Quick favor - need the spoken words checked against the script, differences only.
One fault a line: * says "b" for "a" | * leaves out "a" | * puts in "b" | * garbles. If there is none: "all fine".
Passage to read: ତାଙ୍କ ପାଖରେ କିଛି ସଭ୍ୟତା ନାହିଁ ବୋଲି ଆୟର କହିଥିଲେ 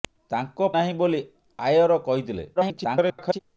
* leaves out "ପାଖରେ କିଛି ସଭ୍ୟତା"
* garbles